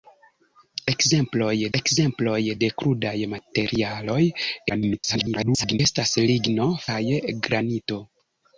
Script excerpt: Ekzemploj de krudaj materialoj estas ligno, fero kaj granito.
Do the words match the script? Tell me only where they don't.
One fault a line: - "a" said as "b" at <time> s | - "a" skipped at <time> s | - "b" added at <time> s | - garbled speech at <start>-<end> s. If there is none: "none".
- "ekzemploj" added at 1.8 s
- garbled speech at 4.7-5.8 s
- "fero" skipped at 6.7 s